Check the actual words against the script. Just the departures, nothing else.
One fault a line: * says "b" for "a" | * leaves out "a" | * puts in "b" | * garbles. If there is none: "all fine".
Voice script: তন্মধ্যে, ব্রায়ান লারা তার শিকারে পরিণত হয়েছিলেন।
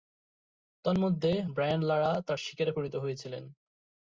all fine